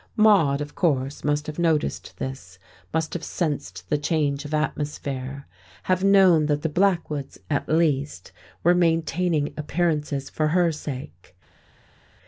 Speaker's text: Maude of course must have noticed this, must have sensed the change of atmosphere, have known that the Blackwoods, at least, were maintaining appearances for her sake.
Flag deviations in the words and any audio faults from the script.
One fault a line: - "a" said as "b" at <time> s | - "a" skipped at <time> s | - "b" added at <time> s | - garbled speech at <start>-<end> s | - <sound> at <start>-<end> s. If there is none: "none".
none